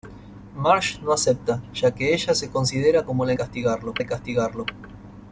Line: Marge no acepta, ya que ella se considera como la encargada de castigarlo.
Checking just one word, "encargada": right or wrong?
wrong